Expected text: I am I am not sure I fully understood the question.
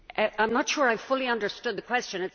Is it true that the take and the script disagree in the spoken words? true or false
true